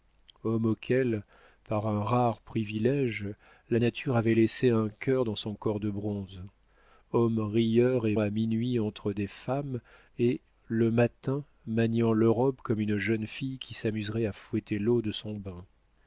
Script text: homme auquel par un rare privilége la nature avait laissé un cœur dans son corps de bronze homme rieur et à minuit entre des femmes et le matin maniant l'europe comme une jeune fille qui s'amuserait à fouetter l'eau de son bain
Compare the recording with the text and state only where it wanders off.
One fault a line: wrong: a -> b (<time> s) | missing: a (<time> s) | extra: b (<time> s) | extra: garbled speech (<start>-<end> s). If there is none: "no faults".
no faults